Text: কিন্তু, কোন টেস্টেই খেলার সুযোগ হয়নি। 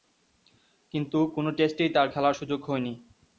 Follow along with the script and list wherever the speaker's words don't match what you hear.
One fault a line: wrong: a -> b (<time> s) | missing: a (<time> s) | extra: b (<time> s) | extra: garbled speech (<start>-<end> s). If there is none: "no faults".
extra: তার (1.9 s)